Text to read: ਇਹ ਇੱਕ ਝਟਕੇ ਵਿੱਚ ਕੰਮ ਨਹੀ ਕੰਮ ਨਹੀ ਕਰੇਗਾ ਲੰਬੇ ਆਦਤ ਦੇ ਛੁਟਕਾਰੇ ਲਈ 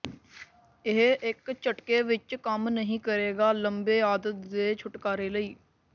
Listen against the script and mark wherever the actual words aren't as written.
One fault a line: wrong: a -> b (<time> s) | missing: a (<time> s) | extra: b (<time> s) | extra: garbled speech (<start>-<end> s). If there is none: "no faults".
missing: ਕੰਮ ਨਹੀ (3.0 s)